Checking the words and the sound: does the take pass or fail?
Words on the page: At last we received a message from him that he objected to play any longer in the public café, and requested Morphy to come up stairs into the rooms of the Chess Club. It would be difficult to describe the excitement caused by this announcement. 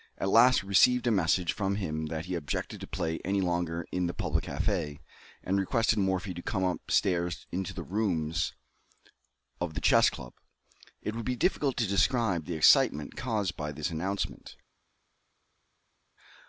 pass